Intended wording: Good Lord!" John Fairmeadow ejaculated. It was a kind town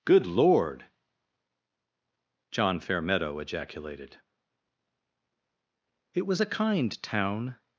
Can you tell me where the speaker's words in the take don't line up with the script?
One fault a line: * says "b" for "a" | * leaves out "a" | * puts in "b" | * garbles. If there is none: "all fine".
all fine